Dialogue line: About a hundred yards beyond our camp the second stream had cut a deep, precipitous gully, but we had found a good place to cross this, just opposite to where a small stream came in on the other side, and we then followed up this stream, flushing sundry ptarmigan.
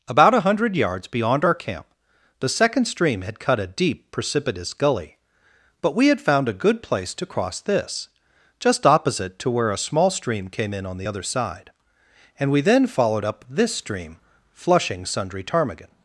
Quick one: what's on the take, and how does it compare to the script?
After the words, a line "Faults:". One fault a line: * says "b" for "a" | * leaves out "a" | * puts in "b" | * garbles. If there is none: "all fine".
About a hundred yards beyond our camp the second stream had cut a deep, precipitous gully, but we had found a good place to cross this, just opposite to where a small stream came in on the other side, and we then followed up this stream, flushing sundry ptarmigan.
Faults:
all fine